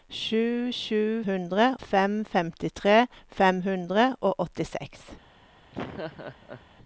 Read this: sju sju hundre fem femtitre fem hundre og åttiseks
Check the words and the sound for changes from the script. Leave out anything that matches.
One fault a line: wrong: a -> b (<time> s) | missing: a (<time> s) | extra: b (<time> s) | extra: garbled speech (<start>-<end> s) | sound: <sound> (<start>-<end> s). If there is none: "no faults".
sound: laugh (5.7-6.7 s)